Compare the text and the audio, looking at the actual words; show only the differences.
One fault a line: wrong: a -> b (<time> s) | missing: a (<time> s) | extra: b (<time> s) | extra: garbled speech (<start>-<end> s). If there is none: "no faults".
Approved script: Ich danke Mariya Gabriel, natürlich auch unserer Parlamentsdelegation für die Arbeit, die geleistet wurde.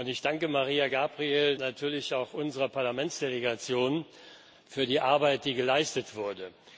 no faults